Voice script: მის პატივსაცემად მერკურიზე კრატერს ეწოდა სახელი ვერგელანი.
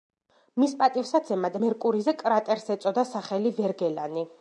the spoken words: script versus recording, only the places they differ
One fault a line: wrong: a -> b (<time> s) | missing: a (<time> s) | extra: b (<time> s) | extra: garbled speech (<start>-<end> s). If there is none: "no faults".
no faults